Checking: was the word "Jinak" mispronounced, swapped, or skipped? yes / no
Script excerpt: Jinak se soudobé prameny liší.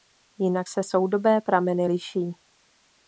no